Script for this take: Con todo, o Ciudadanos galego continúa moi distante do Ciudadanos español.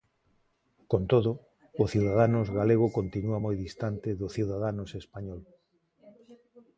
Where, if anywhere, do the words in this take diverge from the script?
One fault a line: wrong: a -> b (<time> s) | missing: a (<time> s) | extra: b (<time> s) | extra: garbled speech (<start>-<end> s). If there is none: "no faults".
no faults